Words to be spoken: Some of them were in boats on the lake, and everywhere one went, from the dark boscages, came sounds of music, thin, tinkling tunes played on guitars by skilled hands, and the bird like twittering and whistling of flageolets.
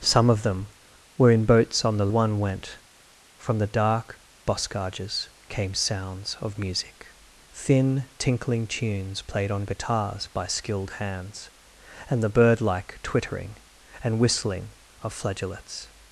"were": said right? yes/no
yes